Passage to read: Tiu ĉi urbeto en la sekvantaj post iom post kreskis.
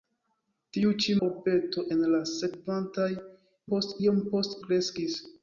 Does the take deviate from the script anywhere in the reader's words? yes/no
no